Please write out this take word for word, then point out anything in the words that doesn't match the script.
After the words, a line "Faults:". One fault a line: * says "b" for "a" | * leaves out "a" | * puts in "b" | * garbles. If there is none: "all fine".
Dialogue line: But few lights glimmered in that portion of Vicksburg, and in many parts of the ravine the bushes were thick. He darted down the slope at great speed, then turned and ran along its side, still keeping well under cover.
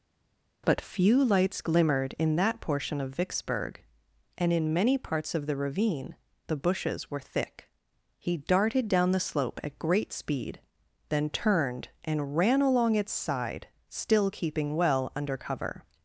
But few lights glimmered in that portion of Vicksburg, and in many parts of the ravine the bushes were thick. He darted down the slope at great speed, then turned and ran along its side, still keeping well under cover.
Faults:
all fine